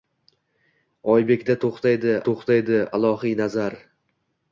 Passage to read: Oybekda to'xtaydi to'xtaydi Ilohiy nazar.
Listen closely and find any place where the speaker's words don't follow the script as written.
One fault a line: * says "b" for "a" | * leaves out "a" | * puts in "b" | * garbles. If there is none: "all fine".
all fine